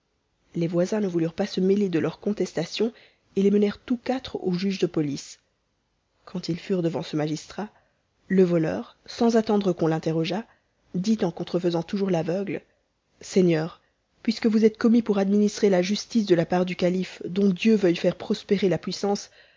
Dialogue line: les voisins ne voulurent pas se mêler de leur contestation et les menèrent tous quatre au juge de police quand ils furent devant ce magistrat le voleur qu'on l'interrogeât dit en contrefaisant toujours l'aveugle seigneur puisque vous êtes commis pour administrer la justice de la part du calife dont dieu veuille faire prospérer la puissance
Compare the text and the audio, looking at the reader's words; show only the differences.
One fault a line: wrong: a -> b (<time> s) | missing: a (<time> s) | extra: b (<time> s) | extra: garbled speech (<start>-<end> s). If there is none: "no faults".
extra: sans attendre (9.1 s)